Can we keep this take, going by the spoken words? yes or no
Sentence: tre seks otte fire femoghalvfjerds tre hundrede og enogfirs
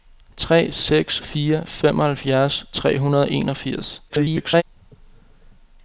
no